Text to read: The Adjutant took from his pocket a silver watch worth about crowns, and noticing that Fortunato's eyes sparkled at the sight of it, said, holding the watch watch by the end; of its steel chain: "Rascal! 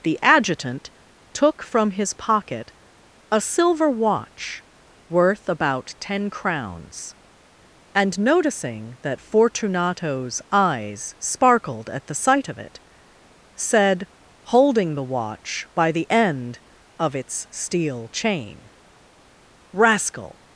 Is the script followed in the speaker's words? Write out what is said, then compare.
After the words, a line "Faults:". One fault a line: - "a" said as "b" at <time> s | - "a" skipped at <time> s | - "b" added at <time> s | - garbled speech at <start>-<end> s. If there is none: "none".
The Adjutant took from his pocket a silver watch worth about ten crowns, and noticing that Fortunato's eyes sparkled at the sight of it, said, holding the watch by the end; of its steel chain: "Rascal!
Faults:
- "ten" added at 6.0 s
- "watch" skipped at 15.7 s